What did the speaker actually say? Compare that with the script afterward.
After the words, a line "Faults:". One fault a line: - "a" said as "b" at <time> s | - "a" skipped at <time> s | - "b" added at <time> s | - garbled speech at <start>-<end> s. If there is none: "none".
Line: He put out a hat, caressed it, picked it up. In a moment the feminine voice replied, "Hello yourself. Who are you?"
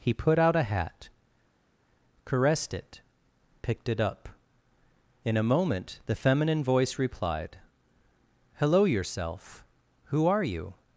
He put out a hat, caressed it, picked it up. In a moment the feminine voice replied, "Hello yourself. Who are you?"
Faults:
none